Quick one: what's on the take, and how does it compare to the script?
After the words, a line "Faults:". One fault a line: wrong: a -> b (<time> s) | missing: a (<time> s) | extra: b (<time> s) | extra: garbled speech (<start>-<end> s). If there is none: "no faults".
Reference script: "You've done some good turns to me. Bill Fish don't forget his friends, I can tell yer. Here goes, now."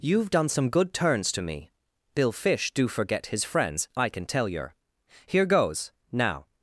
"You've done some good turns to me. Bill Fish do forget his friends, I can tell yer. Here goes, now."
Faults:
wrong: don't -> do (2.7 s)